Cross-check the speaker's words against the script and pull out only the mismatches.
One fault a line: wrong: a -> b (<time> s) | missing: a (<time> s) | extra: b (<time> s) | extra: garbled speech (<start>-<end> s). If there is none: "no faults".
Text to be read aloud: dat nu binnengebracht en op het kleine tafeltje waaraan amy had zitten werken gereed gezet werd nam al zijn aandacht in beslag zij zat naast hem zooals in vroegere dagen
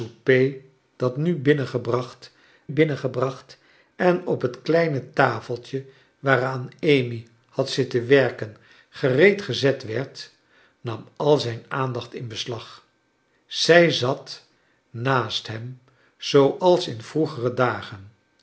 extra: binnengebracht (2.7 s)